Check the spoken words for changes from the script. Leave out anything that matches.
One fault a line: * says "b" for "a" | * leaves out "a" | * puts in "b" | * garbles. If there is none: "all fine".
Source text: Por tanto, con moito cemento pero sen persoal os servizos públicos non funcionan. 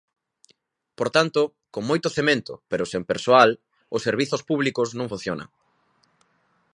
all fine